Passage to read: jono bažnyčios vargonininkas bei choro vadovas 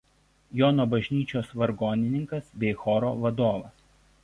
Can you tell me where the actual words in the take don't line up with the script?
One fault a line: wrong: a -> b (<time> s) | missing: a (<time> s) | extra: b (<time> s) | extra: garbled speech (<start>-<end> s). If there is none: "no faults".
no faults